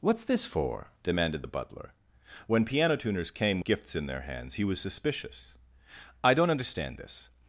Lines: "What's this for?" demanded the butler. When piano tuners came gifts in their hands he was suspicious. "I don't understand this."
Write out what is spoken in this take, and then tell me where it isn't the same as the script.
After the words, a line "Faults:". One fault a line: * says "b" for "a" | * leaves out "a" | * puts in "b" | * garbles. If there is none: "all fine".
"What's this for?" demanded the butler. When piano tuners came gifts in their hands he was suspicious. "I don't understand this."
Faults:
all fine